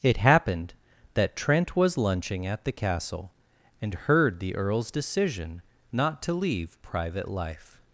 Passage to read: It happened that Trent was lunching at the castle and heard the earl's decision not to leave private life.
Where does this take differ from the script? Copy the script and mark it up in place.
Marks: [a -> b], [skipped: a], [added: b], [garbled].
It happened that Trent was lunching at the castle and heard the earl's decision not to leave private life.